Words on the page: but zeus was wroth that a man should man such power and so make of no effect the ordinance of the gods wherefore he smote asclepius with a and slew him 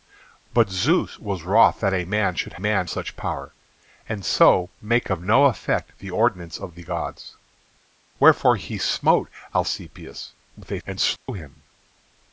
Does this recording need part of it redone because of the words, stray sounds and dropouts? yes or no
yes